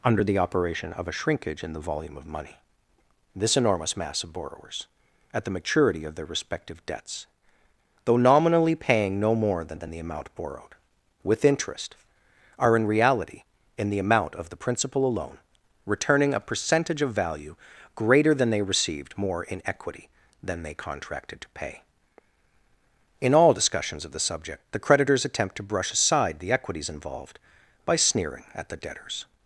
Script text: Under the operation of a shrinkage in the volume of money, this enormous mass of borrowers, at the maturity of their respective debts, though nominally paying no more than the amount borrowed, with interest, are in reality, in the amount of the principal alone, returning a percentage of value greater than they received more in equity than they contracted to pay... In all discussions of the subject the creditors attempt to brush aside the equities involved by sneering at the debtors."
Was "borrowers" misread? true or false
false